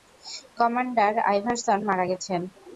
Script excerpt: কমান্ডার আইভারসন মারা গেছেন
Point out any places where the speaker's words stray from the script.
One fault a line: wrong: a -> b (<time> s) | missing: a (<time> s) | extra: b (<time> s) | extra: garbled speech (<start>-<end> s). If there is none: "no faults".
no faults